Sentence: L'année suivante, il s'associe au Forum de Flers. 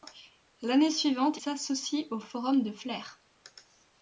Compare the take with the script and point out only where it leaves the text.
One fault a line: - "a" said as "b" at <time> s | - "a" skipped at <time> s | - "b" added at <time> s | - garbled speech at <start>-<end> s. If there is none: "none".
- "il" skipped at 1.4 s